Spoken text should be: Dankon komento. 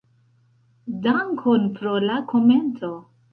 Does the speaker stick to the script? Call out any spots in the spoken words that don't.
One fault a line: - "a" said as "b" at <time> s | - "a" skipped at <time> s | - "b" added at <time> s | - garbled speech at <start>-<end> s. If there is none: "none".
- "pro la" added at 1.8 s